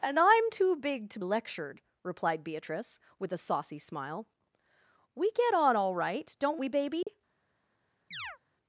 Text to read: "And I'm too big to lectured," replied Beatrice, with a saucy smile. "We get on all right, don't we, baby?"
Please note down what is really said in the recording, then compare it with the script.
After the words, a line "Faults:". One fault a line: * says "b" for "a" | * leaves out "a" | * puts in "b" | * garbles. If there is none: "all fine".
"And I'm too big to lectured," replied Beatrice, with a saucy smile. "We get on all right, don't we, baby?"
Faults:
all fine